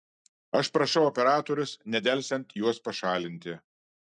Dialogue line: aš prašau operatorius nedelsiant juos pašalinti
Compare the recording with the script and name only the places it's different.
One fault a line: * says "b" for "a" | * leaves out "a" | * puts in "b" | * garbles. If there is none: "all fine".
all fine